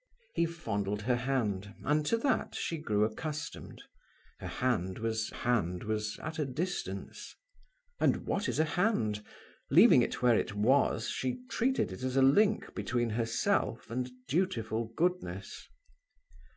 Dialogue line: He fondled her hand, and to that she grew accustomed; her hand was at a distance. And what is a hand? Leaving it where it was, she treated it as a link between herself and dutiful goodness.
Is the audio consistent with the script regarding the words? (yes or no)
no